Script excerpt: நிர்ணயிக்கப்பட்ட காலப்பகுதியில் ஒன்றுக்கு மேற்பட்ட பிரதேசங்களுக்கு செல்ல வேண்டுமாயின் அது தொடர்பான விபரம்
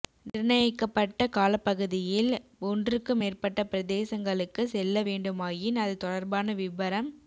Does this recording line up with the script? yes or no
yes